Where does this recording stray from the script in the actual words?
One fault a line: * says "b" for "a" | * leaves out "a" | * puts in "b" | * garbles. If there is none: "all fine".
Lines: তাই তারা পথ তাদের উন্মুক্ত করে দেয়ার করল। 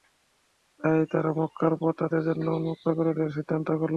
* puts in "মক্কার"
* puts in "জন্য"
* puts in "সিদ্ধান্ত"